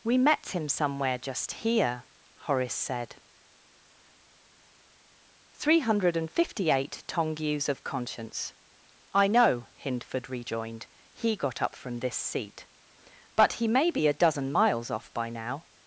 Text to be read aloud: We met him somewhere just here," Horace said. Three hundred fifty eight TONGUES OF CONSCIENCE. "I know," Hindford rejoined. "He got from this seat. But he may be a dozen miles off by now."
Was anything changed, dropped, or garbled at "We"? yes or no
no